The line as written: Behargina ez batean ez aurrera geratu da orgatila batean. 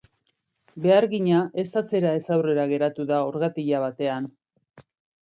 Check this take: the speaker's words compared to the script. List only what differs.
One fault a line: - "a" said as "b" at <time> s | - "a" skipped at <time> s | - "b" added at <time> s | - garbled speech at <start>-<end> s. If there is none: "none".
- "batean" said as "atzera" at 1.8 s